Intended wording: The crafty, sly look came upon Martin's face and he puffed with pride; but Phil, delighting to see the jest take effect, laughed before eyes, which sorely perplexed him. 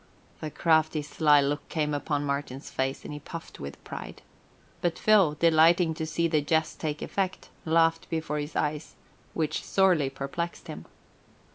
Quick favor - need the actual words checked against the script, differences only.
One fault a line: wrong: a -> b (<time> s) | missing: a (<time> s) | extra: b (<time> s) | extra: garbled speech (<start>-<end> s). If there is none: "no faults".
extra: his (8.4 s)